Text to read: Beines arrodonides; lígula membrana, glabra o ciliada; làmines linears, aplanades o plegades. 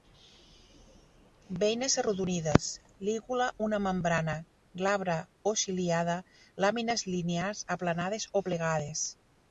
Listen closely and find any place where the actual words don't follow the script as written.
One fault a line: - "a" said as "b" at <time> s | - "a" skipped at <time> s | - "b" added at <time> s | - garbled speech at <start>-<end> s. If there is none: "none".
- "una" added at 3.7 s